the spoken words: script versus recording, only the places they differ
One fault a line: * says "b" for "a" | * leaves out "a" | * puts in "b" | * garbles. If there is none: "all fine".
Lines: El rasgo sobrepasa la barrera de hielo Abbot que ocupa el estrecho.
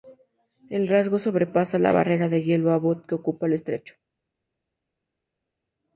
all fine